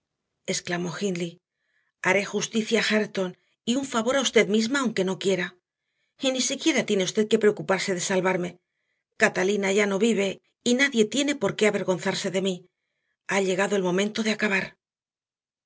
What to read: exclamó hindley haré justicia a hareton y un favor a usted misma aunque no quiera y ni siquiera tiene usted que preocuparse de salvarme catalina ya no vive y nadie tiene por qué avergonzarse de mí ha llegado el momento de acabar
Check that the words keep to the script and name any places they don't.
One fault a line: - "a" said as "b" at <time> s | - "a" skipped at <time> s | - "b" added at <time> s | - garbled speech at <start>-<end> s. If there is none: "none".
none